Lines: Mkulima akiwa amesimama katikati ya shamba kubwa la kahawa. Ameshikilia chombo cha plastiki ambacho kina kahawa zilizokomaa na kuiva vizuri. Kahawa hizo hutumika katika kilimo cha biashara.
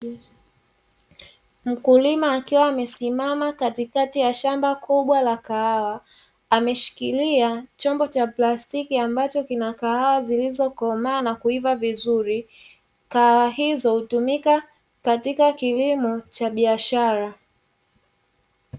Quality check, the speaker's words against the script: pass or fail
pass